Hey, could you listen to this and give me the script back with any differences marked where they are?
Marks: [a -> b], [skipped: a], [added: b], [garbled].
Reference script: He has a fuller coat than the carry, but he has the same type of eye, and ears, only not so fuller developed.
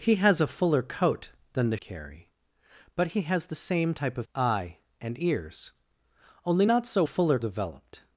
He has a fuller coat than the carry, but he has the same type of eye, and ears, only not so fuller developed.